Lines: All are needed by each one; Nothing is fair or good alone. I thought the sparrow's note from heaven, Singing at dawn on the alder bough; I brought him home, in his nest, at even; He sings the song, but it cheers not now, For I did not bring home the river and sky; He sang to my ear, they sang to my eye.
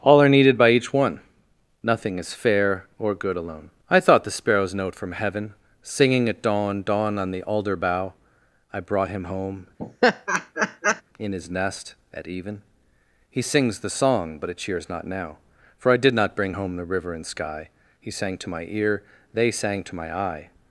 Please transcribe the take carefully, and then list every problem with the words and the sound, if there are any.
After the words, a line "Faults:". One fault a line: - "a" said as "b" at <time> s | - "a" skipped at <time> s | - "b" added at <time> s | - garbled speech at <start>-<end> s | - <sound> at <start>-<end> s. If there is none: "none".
All are needed by each one; Nothing is fair or good alone. I thought the sparrow's note from heaven, Singing at dawn dawn on the alder bough; I brought him home, in his nest, at even; He sings the song, but it cheers not now, For I did not bring home the river and sky; He sang to my ear, they sang to my eye.
Faults:
- "dawn" added at 6.8 s
- laugh at 9.8-11.0 s